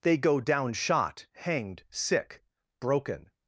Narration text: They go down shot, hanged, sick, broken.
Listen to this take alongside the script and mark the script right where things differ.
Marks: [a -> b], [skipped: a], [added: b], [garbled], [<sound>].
They go down shot, hanged, sick, broken.